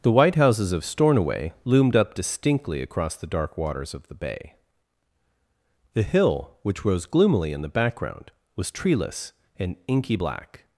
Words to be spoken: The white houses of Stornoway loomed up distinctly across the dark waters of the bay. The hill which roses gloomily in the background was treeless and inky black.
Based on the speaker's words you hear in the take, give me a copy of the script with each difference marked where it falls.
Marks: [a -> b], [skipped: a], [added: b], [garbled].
The white houses of Stornoway loomed up distinctly across the dark waters of the bay. The hill which [roses -> rose] gloomily in the background was treeless and inky black.